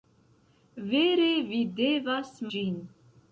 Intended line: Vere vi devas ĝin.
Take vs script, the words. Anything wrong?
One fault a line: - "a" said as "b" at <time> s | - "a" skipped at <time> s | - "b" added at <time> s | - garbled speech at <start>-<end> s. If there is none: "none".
none